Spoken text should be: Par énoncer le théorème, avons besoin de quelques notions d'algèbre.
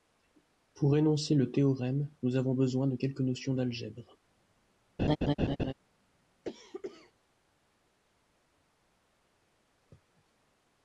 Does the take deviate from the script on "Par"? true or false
true